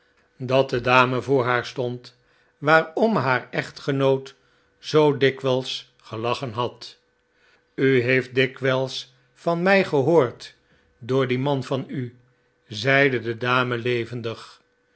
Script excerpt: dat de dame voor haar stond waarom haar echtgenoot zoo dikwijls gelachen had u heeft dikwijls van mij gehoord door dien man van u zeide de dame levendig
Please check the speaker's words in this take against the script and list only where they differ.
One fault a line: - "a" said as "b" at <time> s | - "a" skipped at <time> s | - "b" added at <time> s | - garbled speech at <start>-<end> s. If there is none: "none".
none